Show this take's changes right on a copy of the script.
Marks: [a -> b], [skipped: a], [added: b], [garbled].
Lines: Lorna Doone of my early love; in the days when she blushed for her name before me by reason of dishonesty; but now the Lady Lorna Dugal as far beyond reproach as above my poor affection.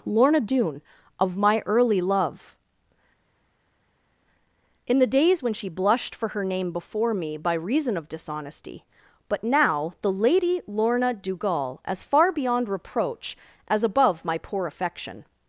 Lorna Doone of my early love; in the days when she blushed for her name before me by reason of dishonesty; but now the Lady Lorna Dugal as far beyond reproach as above my poor affection.